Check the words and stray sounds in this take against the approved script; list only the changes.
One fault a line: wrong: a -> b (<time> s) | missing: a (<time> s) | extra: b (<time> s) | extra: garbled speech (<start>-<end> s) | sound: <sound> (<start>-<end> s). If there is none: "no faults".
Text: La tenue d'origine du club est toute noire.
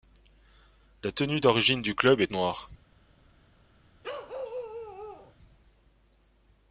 missing: toute (2.3 s)
sound: bark (4.0-5.3 s)